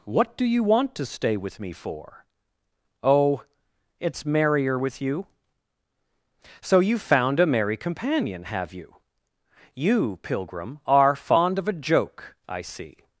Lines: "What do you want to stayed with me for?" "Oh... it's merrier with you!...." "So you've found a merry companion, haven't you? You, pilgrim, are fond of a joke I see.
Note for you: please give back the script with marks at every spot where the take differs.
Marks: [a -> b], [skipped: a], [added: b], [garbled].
"What do you want to [stayed -> stay] with me for?" "Oh... it's merrier with you!...." "So you've found a merry companion, [haven't -> have] you? You, pilgrim, are fond of a joke I see.